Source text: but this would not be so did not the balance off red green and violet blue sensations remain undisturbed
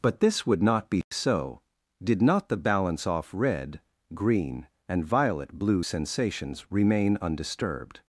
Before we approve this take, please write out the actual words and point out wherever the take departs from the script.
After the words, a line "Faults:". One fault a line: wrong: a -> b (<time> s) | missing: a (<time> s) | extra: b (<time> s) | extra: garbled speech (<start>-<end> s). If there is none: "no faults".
but this would not be so did not the balance off red green and violet blue sensations remain undisturbed
Faults:
no faults